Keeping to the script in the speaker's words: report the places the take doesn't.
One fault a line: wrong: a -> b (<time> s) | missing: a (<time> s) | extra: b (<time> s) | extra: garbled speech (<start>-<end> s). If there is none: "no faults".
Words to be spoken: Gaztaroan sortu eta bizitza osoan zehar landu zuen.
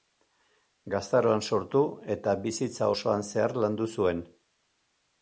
no faults